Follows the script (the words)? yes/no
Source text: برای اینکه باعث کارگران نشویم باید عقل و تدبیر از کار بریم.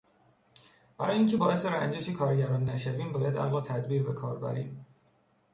no